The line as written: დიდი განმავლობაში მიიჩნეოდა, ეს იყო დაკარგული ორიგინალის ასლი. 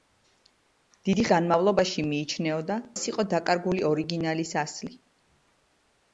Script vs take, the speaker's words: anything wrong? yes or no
no